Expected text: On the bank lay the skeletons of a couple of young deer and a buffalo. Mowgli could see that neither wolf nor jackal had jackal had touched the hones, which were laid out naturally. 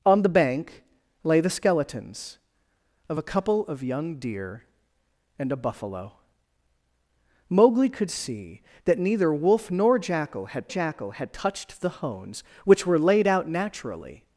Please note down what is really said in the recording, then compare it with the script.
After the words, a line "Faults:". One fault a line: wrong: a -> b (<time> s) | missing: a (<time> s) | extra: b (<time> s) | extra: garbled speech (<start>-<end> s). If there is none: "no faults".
On the bank lay the skeletons of a couple of young deer and a buffalo. Mowgli could see that neither wolf nor jackal had jackal had touched the hones, which were laid out naturally.
Faults:
no faults